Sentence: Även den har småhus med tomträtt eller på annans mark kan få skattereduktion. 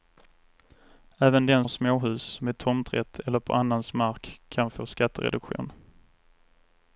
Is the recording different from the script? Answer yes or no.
no